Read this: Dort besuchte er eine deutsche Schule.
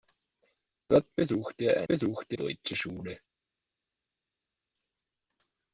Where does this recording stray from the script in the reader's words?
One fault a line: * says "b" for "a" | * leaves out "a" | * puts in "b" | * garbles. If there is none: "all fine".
* says "besuchte" for "eine"